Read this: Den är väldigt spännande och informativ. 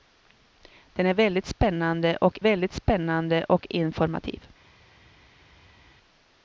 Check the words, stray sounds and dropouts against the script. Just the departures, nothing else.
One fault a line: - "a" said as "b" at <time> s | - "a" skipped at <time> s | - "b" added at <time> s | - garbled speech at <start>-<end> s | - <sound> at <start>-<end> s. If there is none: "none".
- "väldigt spännande och" added at 2.4 s